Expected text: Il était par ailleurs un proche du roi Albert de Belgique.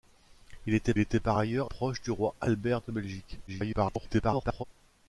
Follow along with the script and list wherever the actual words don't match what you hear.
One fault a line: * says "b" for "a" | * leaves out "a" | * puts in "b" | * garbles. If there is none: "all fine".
* puts in "était"
* leaves out "un"
* garbles